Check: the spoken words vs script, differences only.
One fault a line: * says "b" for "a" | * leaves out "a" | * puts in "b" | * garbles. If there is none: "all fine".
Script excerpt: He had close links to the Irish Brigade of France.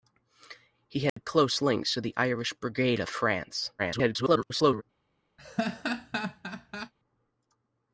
* garbles